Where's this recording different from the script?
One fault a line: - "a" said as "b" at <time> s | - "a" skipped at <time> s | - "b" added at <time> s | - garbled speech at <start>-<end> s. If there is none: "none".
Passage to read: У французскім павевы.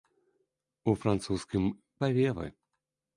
none